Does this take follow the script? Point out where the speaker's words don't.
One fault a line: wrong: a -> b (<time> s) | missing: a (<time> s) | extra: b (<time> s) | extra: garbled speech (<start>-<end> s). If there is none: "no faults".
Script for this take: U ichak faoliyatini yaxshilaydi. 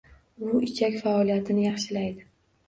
no faults